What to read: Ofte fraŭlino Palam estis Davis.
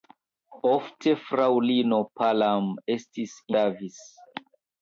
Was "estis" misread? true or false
false